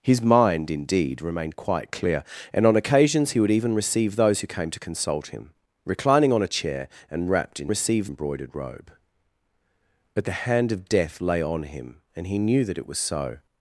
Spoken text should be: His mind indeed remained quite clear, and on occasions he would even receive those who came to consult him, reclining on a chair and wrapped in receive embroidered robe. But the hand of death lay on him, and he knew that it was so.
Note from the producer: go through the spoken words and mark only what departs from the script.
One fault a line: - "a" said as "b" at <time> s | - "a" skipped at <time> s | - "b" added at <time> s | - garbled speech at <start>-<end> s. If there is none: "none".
none